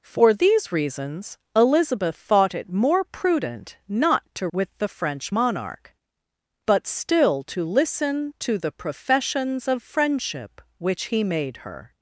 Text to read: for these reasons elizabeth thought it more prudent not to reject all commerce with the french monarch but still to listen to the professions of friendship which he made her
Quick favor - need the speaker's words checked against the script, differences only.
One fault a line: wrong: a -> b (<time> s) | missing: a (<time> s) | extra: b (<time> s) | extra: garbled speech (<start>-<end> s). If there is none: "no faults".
missing: reject all commerce (4.5 s)